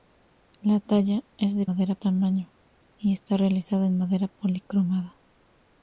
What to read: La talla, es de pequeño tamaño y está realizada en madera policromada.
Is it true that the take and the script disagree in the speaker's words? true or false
true